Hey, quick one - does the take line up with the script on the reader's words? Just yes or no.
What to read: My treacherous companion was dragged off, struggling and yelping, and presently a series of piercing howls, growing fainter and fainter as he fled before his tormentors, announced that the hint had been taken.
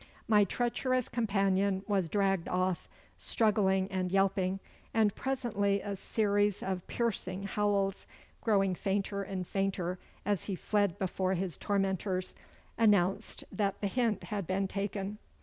yes